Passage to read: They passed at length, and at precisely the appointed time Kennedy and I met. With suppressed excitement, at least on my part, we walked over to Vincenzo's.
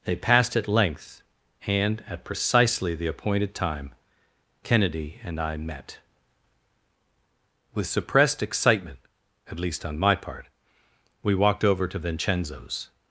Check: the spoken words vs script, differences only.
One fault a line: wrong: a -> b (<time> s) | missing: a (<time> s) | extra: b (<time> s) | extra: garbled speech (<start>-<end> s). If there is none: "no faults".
no faults